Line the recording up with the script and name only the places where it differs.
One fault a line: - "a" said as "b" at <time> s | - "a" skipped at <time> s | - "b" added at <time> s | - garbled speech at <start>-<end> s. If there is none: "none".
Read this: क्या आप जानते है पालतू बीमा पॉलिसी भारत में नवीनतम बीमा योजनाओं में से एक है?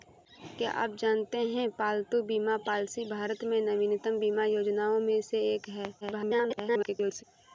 - garbled speech at 6.0-7.2 s